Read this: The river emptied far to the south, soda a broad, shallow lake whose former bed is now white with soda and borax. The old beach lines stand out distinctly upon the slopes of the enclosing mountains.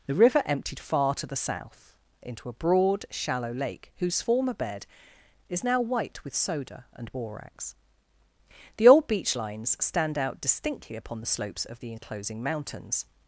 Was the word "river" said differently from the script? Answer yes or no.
no